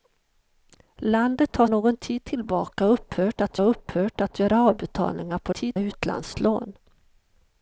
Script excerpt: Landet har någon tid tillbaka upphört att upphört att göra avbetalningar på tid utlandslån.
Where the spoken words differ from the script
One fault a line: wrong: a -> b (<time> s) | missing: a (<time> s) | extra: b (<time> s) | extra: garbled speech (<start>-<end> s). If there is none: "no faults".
no faults